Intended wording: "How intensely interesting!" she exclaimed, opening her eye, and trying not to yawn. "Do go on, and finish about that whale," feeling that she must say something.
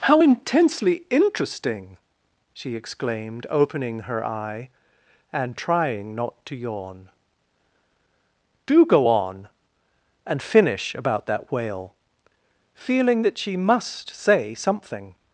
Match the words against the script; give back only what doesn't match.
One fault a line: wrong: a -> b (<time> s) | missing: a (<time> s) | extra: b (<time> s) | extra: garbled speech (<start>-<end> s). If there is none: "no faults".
no faults